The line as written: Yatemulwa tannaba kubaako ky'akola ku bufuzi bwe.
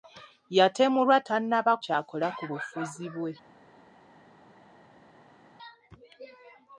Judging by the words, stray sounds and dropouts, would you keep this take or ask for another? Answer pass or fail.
fail